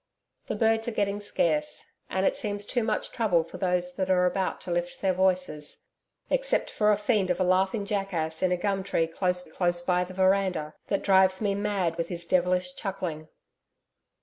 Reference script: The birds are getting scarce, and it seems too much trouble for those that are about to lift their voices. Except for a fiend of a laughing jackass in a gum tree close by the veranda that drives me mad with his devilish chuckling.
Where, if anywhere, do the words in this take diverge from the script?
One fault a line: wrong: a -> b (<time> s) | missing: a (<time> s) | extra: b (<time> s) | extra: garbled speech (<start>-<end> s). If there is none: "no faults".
extra: close (9.4 s)